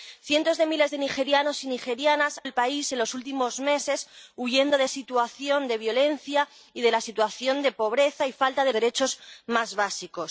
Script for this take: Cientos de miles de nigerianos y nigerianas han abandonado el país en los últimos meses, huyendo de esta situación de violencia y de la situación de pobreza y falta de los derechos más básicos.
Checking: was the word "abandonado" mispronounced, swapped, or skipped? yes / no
yes